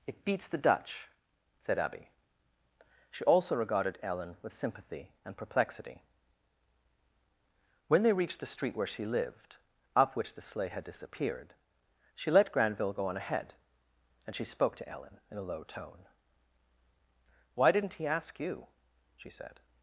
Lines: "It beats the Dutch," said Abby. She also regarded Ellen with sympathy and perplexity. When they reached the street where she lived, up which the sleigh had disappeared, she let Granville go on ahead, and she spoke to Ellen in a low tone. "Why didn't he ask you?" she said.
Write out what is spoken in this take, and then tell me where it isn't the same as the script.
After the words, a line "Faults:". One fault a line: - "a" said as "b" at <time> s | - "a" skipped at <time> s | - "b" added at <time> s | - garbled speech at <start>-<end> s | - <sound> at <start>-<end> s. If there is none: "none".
"It beats the Dutch," said Abby. She also regarded Ellen with sympathy and perplexity. When they reached the street where she lived, up which the sleigh had disappeared, she let Granville go on ahead, and she spoke to Ellen in a low tone. "Why didn't he ask you?" she said.
Faults:
none